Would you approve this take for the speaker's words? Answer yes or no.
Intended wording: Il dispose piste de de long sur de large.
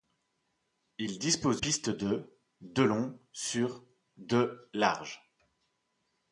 yes